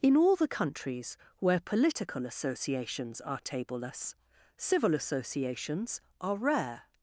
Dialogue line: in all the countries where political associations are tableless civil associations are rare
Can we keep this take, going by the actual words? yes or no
yes